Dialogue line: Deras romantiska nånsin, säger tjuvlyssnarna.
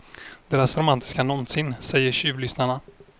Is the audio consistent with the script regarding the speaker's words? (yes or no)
yes